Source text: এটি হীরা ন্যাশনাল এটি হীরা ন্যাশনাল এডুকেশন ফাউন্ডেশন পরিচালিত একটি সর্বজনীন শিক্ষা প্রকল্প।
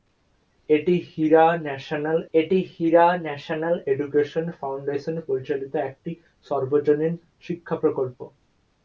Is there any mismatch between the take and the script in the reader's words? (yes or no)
no